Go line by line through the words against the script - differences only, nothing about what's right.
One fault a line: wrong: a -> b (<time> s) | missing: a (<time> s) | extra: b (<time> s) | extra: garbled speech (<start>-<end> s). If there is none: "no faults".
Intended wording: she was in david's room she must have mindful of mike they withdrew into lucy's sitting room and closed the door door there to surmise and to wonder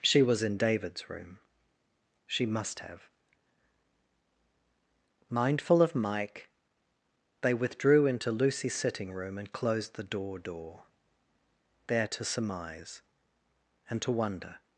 no faults